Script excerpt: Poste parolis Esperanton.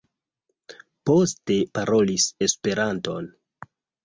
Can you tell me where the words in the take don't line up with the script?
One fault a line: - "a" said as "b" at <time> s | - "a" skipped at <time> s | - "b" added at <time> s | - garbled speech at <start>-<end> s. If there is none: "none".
none